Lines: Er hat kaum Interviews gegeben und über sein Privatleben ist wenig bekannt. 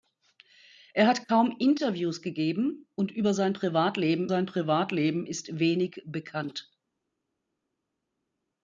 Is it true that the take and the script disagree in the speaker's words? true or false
true